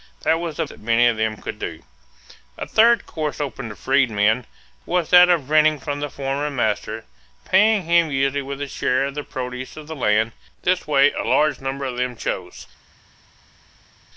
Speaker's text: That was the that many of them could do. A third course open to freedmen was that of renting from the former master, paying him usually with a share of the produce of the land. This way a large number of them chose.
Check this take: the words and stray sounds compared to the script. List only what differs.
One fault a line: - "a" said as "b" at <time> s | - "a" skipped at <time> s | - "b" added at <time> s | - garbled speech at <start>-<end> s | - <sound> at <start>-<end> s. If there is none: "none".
none